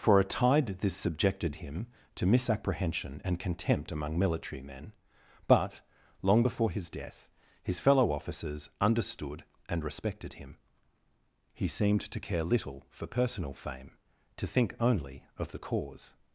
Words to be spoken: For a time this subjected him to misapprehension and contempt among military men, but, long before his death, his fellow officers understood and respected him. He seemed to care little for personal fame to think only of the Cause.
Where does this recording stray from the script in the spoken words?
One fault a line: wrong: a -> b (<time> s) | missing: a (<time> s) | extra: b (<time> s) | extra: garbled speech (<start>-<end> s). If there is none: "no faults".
wrong: time -> tide (0.2 s)